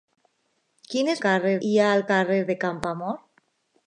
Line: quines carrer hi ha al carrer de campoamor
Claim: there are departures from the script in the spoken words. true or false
false